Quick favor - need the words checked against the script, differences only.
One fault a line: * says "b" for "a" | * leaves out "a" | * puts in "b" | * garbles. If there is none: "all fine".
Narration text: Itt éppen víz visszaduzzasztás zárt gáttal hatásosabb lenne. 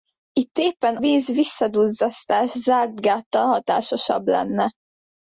all fine